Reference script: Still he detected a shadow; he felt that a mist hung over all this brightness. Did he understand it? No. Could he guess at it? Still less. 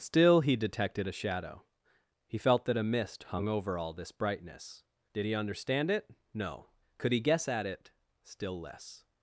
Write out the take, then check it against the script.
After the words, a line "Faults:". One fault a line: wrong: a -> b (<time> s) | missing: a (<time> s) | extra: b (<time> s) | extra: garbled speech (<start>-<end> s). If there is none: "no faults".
Still he detected a shadow; he felt that a mist hung over all this brightness. Did he understand it? No. Could he guess at it? Still less.
Faults:
no faults